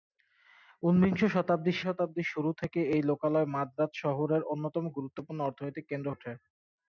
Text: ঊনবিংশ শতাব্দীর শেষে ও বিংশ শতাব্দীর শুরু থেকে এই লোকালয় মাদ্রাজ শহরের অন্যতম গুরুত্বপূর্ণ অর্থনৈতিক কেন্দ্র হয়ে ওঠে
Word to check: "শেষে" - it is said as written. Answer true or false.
false